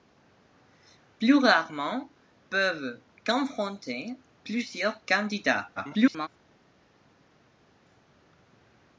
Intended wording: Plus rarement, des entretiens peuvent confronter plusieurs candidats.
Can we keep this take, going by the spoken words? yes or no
no